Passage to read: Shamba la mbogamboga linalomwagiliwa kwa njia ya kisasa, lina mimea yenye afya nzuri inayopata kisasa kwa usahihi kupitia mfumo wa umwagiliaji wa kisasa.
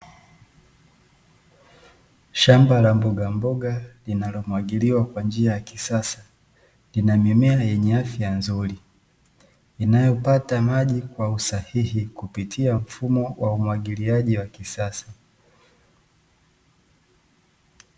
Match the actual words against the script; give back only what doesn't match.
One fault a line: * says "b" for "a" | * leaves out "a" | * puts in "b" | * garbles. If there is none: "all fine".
* says "maji" for "kisasa"